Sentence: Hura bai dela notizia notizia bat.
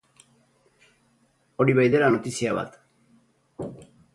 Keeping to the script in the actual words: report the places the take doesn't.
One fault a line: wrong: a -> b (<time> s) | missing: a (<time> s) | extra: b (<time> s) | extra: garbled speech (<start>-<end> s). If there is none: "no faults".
wrong: Hura -> Hori (1.6 s)
missing: notizia (2.5 s)